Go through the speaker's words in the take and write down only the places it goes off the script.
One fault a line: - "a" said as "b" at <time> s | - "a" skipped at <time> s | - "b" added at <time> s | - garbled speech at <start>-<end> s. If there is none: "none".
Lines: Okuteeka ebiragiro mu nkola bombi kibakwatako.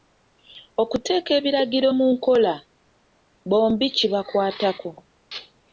none